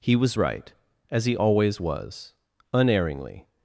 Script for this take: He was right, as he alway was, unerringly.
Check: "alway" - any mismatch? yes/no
yes